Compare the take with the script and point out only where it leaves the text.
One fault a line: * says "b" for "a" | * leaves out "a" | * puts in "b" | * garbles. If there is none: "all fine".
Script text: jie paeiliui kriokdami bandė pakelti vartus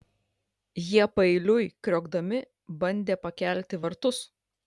all fine